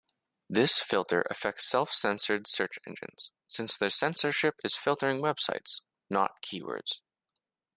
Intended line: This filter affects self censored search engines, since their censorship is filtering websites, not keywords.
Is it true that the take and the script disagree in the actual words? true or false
false